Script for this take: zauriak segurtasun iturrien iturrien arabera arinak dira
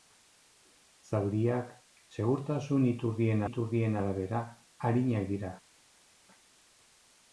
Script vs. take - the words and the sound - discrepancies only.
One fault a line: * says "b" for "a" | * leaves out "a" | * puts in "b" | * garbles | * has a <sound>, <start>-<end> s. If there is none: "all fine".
all fine